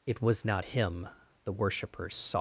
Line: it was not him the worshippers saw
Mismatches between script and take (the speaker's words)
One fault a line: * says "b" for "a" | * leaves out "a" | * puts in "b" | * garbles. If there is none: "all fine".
all fine